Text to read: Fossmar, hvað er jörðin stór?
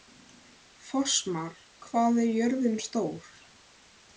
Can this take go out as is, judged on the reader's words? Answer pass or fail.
pass